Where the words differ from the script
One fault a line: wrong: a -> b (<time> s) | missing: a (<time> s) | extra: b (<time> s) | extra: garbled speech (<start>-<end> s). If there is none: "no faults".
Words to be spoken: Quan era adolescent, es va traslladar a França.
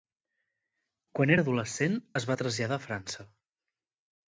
no faults